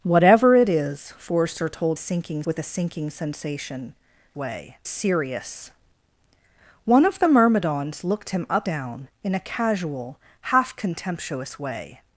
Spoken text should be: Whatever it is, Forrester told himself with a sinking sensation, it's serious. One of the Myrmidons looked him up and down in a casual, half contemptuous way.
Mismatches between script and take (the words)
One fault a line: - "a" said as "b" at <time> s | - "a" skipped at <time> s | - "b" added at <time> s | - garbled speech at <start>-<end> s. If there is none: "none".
- "himself" said as "sinking" at 2.0 s
- "it's" said as "way" at 4.3 s
- "and" skipped at 8.7 s